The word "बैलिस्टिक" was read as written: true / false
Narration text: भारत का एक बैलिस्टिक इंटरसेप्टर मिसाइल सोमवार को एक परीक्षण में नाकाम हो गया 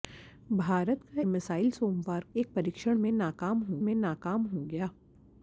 false